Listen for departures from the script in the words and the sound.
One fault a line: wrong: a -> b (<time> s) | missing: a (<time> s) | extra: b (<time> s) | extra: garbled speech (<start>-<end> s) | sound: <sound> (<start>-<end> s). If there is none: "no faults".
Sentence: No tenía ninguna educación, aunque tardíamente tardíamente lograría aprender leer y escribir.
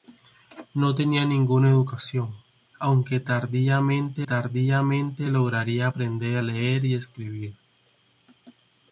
no faults